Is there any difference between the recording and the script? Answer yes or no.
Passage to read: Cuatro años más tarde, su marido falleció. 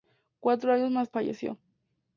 yes